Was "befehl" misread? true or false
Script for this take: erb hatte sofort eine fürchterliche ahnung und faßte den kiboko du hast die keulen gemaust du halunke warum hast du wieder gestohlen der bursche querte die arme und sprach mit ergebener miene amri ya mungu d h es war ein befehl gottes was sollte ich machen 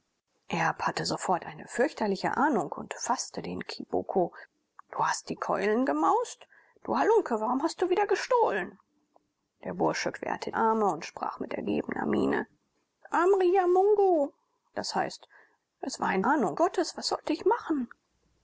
true